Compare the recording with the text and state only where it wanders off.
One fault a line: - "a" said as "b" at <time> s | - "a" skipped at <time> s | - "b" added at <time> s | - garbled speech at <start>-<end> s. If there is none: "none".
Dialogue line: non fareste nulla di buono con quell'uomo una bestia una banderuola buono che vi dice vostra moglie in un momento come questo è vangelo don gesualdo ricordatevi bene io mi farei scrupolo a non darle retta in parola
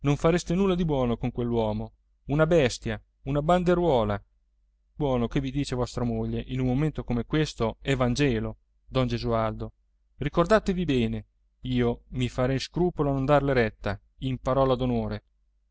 none